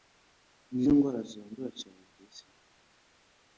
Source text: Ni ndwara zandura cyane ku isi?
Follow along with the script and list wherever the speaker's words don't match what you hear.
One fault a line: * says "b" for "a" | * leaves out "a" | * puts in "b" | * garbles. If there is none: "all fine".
all fine